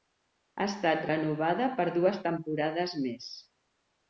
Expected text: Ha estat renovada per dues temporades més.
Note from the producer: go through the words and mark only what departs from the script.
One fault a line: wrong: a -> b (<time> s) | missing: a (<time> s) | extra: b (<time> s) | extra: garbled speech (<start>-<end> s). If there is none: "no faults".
no faults